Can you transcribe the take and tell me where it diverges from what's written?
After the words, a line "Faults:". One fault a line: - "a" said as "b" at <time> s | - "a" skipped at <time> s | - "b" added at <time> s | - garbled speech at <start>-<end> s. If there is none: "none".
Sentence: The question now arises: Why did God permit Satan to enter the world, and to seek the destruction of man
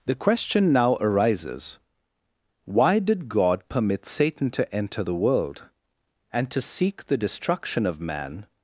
The question now arises: Why did God permit Satan to enter the world, and to seek the destruction of man
Faults:
none